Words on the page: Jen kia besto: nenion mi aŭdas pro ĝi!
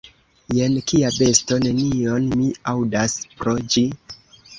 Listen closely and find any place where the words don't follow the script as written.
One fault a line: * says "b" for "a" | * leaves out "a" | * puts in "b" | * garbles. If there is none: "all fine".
all fine